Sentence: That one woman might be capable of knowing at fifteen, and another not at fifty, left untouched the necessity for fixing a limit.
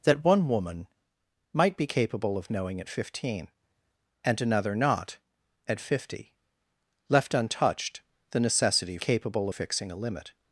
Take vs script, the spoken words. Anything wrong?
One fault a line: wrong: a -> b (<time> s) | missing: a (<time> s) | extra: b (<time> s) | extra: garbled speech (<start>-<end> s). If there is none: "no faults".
wrong: for -> capable (9.0 s)